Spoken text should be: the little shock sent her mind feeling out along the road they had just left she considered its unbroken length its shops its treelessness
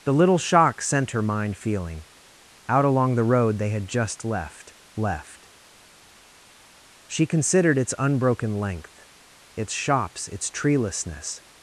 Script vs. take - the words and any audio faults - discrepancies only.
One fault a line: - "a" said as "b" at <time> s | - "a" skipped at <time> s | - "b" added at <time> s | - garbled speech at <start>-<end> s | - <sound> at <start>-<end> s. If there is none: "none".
- "left" added at 4.9 s